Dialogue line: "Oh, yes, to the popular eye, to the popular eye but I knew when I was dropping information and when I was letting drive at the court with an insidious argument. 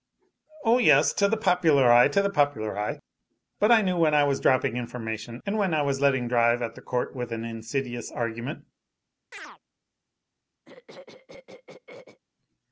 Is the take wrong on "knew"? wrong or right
right